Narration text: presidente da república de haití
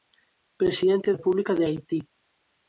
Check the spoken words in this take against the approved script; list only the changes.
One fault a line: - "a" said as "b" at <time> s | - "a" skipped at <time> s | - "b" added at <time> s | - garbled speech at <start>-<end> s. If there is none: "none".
- "da" skipped at 1.1 s